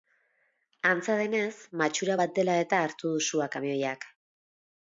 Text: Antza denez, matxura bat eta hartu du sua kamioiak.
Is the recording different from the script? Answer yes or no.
yes